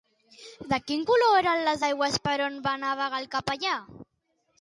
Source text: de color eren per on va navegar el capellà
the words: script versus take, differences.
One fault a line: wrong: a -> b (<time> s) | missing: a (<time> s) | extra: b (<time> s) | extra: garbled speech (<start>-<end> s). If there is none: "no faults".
extra: quin (0.9 s)
extra: les aigües (1.7 s)